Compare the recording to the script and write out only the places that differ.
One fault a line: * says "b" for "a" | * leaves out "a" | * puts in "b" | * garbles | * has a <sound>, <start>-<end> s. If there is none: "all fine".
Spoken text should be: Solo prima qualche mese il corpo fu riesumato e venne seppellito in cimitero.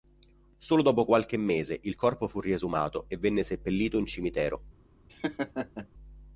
* says "dopo" for "prima"
* has a laugh, 5.1-5.9 s